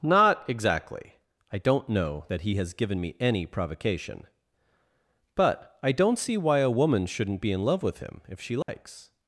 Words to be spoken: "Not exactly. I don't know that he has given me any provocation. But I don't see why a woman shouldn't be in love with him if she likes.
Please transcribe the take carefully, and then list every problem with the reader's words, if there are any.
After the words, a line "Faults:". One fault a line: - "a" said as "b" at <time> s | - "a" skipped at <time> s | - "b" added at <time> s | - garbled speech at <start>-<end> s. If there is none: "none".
"Not exactly. I don't know that he has given me any provocation. But I don't see why a woman shouldn't be in love with him if she likes.
Faults:
none